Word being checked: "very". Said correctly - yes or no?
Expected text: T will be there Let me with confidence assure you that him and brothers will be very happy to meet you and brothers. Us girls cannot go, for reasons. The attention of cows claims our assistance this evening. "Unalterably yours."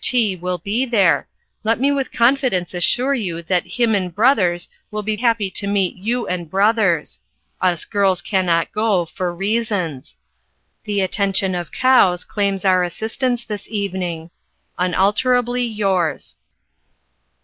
no